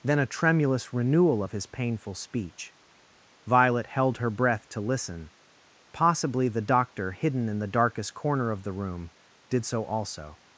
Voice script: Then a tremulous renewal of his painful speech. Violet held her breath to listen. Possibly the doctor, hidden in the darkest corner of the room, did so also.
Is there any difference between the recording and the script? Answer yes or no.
no